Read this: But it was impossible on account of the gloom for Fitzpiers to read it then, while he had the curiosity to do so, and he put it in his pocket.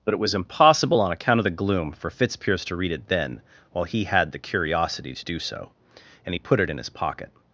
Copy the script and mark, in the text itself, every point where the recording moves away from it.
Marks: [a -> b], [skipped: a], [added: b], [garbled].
But it was impossible on account of the gloom for Fitzpiers to read it then, while he had the curiosity to do so, and he put it in his pocket.